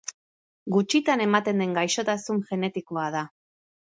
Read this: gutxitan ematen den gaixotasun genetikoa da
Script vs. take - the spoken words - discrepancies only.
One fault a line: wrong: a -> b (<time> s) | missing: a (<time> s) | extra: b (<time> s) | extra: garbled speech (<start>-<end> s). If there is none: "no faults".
no faults